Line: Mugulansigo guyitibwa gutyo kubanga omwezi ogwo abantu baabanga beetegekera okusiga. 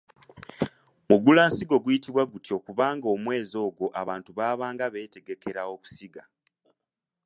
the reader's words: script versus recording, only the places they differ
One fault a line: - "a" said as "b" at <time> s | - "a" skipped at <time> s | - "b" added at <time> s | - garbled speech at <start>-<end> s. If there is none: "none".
none